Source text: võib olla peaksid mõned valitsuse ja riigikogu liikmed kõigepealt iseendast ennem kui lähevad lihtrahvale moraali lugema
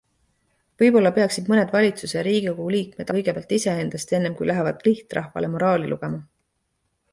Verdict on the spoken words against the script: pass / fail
pass